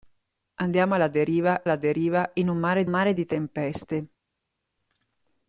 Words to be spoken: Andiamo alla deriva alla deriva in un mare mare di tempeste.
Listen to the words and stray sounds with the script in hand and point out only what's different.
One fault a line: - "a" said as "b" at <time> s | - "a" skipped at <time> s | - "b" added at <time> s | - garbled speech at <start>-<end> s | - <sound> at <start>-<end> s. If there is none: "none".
none